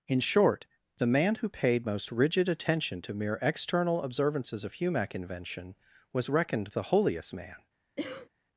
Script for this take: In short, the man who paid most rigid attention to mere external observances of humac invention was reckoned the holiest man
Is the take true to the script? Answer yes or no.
yes